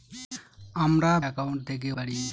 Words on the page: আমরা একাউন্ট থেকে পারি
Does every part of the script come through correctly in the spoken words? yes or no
yes